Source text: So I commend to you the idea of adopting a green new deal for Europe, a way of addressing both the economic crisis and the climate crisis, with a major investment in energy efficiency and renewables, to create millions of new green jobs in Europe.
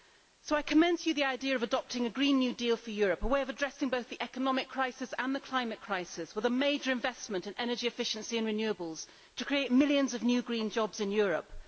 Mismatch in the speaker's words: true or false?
false